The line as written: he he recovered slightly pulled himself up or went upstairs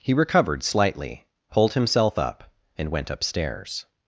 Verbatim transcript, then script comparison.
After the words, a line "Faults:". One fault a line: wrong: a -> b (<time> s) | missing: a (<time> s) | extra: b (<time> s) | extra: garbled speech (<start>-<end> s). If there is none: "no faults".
he recovered slightly pulled himself up and went upstairs
Faults:
missing: he (0.1 s)
wrong: or -> and (2.8 s)